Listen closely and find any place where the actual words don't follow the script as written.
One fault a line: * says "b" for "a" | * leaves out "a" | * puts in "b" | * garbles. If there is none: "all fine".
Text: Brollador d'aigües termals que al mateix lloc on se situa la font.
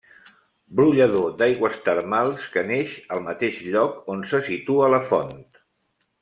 * puts in "neix"